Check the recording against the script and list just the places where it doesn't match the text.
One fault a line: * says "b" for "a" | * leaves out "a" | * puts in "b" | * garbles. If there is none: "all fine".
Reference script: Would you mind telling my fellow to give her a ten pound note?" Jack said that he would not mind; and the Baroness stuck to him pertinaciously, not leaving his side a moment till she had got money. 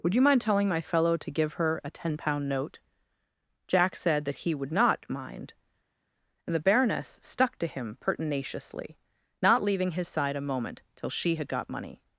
all fine